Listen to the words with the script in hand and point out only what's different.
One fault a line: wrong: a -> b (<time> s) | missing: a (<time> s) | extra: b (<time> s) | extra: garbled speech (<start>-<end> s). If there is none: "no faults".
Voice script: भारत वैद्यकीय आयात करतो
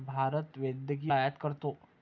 no faults